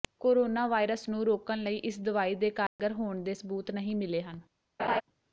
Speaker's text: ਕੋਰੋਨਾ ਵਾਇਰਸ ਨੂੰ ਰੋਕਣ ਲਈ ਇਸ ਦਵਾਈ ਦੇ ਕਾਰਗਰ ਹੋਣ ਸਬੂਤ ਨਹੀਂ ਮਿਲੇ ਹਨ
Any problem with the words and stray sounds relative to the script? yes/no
yes